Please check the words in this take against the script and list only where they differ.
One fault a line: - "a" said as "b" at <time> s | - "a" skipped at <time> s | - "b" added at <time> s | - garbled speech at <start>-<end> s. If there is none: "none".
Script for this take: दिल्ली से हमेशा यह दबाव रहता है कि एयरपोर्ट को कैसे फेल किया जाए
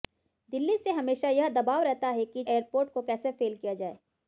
none